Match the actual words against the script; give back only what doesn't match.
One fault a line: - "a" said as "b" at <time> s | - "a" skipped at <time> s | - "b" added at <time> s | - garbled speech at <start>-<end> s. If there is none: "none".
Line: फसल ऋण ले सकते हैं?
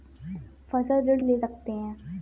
none